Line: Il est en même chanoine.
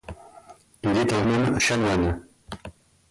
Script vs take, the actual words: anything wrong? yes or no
no